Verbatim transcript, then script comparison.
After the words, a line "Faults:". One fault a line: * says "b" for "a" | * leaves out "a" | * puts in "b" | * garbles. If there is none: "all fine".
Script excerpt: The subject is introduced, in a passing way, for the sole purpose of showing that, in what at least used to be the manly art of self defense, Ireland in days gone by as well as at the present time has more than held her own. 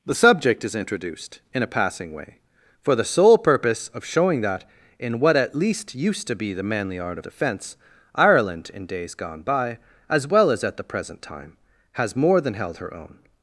The subject is introduced, in a passing way, for the sole purpose of showing that, in what at least used to be the manly art of defense, Ireland in days gone by as well as at the present time has more than held her own.
Faults:
* leaves out "self"